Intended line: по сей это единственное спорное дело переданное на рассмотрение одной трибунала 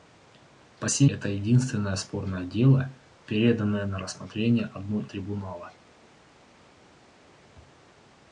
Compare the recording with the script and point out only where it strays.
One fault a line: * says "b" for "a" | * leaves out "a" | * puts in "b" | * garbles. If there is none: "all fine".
all fine